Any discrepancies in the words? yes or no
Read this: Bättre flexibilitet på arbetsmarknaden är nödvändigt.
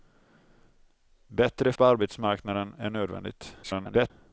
yes